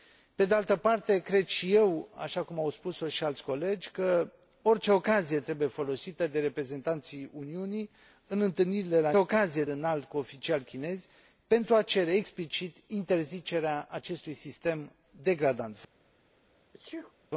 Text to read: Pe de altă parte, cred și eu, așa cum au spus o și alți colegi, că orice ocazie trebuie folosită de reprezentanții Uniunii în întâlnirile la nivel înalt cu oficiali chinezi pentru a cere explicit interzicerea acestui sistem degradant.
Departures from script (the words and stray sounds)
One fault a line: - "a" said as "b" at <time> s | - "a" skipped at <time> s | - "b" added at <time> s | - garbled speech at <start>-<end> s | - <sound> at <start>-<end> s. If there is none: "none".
- "nivel" said as "ocazie" at 9.2 s
- sneeze at 16.7-17.1 s